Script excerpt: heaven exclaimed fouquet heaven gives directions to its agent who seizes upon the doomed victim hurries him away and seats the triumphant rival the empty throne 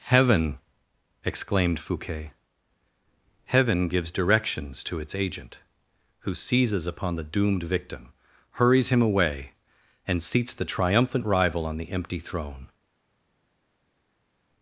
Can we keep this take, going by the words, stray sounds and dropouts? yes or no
no